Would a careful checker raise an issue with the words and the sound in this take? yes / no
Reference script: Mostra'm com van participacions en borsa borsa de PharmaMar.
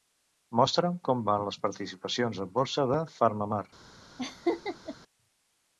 yes